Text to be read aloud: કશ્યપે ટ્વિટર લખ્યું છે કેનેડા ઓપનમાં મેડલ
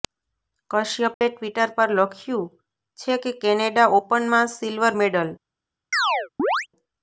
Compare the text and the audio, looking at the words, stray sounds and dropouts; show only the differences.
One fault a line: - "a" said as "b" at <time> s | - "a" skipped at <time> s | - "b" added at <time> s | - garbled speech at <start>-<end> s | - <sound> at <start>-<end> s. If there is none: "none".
- dropout at 1.1-1.2 s
- "પર" added at 1.8 s
- "કે" added at 3.2 s
- "સિલ્વર" added at 4.5 s
- chirp at 5.9-6.7 s